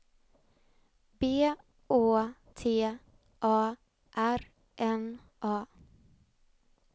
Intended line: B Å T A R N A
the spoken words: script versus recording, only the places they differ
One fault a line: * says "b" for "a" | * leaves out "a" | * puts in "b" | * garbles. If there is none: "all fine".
all fine